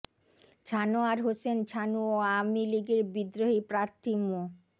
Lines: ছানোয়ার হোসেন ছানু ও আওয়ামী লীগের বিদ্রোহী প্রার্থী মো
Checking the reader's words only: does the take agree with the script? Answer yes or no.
yes